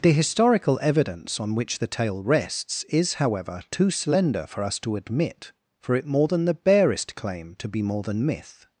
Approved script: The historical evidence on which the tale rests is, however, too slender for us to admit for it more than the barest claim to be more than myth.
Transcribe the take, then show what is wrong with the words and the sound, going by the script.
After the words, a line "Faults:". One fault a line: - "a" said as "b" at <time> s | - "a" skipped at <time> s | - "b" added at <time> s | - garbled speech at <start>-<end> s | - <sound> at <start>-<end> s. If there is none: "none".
The historical evidence on which the tale rests is, however, too slender for us to admit for it more than the barest claim to be more than myth.
Faults:
none